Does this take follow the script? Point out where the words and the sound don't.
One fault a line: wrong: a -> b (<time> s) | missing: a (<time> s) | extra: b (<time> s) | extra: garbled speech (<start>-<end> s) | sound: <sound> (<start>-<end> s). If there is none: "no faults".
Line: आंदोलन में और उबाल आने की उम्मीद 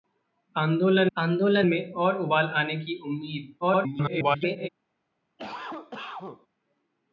extra: आंदोलन (1.2 s)
extra: garbled speech (3.6-4.7 s)
sound: cough (5.4-6.5 s)